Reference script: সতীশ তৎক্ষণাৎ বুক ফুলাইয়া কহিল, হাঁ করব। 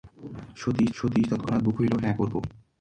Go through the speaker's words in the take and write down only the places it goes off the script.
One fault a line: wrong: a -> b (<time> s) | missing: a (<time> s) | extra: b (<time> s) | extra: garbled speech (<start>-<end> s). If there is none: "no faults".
extra: সতীশ (1.0 s)
missing: ফুলাইয়া (1.7 s)